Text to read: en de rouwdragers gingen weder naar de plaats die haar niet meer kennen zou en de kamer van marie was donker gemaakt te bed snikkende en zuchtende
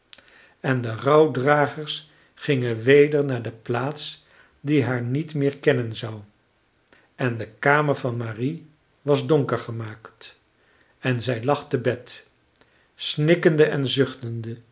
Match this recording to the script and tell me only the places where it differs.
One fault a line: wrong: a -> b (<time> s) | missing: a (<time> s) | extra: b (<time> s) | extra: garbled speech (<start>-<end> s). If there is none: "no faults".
extra: en zij lag (11.0 s)